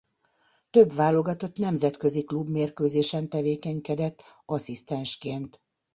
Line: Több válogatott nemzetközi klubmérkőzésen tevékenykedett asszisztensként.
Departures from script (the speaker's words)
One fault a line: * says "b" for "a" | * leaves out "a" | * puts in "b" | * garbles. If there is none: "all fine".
all fine